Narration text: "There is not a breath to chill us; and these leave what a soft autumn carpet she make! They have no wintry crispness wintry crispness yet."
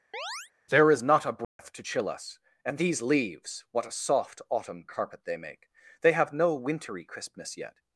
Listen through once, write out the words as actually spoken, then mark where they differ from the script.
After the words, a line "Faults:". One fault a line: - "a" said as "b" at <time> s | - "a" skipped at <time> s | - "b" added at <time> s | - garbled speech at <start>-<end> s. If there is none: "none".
"There is not a breath to chill us; and these leaves what a soft autumn carpet they make! They have no wintry crispness yet."
Faults:
- "leave" said as "leaves" at 3.0 s
- "she" said as "they" at 5.2 s
- "wintry crispness" skipped at 7.6 s